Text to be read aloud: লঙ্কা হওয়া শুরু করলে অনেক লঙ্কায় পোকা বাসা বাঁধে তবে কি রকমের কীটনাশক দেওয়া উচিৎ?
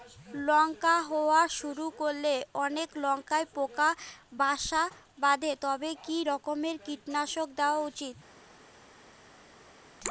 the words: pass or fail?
pass